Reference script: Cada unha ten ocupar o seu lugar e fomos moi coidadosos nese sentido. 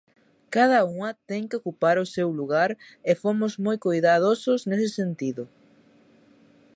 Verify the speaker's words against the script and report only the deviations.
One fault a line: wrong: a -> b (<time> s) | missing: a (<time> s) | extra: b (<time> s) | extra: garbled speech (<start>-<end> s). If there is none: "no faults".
extra: que (1.5 s)